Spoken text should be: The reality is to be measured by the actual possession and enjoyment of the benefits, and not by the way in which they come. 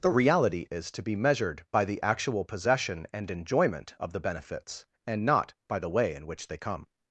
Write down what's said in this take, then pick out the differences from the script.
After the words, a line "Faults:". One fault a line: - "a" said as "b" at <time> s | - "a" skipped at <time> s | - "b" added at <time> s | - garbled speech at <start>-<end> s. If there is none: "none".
The reality is to be measured by the actual possession and enjoyment of the benefits, and not by the way in which they come.
Faults:
none